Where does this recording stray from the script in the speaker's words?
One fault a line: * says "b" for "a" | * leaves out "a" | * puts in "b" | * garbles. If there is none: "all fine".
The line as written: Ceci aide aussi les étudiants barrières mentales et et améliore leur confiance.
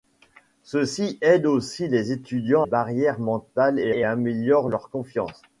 all fine